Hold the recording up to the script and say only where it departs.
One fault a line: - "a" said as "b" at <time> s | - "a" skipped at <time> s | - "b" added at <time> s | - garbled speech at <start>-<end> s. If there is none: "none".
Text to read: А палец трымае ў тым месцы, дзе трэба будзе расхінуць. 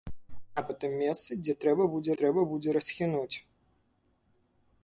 - "палец трымае" skipped at 0.6 s
- "трэба будзе" added at 2.2 s